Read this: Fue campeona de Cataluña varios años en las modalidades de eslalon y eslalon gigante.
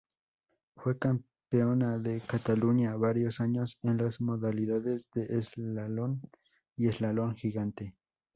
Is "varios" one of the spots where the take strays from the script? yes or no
no